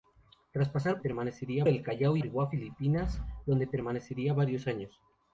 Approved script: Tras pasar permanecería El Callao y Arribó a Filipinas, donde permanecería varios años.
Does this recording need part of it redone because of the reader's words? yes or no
no